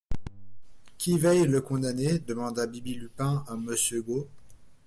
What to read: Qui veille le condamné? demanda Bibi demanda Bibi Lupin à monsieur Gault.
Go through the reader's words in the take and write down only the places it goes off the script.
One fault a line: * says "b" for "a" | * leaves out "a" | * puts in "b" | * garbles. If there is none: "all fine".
* leaves out "demanda Bibi"